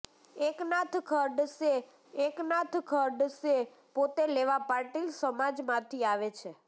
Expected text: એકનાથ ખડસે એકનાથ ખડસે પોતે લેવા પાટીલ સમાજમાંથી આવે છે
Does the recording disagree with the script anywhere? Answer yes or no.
no